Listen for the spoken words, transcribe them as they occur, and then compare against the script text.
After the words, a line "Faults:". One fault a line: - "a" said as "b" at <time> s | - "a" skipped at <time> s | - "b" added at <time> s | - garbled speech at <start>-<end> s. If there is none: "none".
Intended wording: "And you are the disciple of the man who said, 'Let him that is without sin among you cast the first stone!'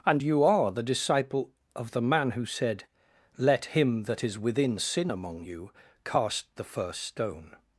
"And you are the disciple of the man who said, 'Let him that is within sin among you cast the first stone!'
Faults:
- "without" said as "within" at 4.4 s